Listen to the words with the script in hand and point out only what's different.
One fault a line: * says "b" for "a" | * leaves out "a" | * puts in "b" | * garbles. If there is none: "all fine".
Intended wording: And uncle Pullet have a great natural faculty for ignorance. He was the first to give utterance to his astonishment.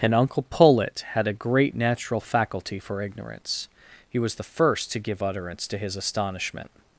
* says "had" for "have"